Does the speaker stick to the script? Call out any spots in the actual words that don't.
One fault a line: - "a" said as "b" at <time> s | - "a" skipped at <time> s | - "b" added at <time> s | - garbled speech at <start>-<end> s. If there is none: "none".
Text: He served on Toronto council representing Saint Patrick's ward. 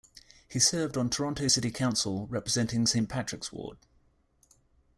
- "city" added at 1.4 s